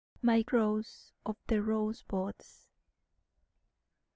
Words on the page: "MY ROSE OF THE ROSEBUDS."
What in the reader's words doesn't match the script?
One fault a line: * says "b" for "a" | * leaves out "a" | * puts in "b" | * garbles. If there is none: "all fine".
all fine